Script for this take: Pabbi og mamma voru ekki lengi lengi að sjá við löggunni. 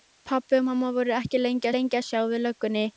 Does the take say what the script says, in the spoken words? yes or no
yes